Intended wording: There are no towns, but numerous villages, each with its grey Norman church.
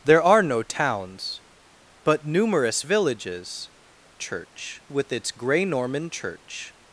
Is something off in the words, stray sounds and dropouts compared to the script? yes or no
yes